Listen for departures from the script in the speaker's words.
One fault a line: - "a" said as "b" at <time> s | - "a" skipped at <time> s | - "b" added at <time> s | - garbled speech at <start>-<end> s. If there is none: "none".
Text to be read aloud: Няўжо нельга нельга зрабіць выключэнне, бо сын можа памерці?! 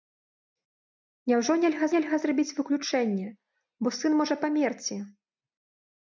none